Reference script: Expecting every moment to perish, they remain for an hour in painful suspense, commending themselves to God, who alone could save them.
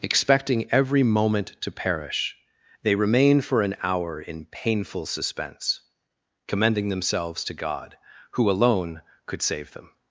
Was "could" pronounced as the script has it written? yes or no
yes